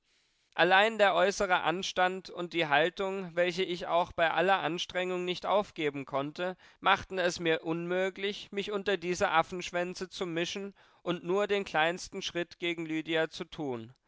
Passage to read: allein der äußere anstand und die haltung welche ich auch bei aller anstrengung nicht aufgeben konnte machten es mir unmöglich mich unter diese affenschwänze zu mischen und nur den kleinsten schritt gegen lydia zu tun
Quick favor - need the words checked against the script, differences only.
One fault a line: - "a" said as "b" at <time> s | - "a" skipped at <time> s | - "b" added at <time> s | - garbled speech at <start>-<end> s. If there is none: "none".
none